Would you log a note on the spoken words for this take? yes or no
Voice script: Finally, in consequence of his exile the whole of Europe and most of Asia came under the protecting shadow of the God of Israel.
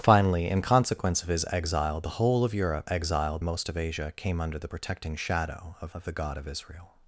yes